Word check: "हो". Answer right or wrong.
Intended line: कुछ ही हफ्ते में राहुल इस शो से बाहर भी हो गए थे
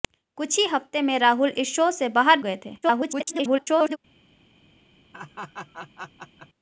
wrong